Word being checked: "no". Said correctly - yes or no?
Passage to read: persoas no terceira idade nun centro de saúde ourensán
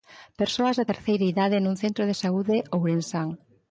no